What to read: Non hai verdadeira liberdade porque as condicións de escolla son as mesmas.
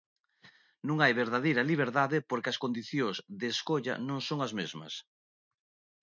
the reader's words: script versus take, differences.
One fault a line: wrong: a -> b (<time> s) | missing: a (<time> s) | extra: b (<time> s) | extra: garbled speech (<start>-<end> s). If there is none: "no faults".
extra: non (4.1 s)